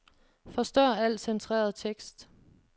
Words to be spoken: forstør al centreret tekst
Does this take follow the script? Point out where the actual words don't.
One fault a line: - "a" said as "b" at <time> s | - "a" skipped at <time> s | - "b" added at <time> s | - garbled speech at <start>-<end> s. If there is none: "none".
none